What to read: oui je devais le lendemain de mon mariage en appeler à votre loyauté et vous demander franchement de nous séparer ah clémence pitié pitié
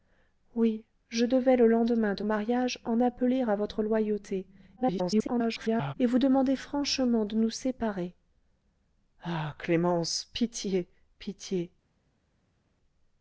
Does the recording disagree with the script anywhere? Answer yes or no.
yes